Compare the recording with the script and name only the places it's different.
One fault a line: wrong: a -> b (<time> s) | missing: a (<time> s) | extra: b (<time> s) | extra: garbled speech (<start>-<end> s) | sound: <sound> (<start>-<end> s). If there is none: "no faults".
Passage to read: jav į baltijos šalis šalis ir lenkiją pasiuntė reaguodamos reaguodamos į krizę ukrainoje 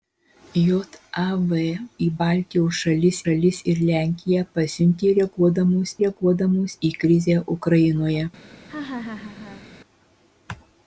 sound: laugh (8.7-9.7 s)